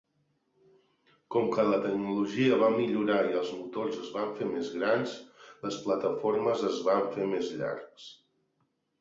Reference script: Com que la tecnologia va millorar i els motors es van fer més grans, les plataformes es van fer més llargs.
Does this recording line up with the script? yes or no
yes